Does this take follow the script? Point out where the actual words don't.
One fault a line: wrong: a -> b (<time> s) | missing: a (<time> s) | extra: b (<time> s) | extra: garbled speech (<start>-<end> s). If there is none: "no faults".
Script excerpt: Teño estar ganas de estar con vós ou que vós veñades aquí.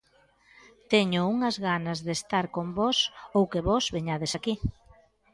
wrong: estar -> unhas (1.3 s)